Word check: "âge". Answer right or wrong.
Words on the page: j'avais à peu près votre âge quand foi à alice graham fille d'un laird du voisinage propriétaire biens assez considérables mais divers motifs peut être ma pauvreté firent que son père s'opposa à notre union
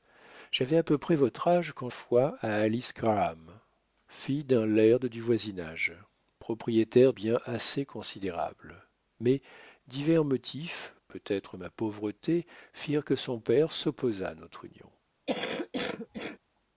right